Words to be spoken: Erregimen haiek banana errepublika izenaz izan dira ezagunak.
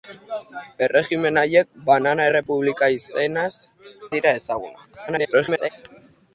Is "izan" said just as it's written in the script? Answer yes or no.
no